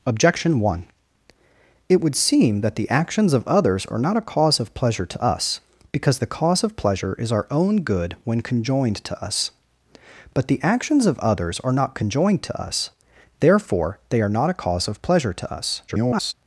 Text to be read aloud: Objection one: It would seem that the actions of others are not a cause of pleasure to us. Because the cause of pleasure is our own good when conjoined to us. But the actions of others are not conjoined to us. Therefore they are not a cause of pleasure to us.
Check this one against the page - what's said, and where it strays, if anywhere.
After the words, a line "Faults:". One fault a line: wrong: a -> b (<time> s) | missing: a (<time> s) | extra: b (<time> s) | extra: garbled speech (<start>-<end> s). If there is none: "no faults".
Objection one: It would seem that the actions of others are not a cause of pleasure to us. Because the cause of pleasure is our own good when conjoined to us. But the actions of others are not conjoined to us. Therefore they are not a cause of pleasure to us. [garbled]
Faults:
extra: garbled speech (15.9-16.3 s)